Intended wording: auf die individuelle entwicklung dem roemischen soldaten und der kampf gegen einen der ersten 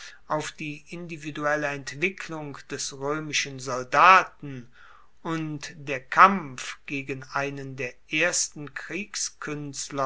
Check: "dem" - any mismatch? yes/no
yes